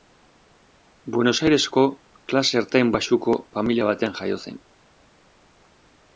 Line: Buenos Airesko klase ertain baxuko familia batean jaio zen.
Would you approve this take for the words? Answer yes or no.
yes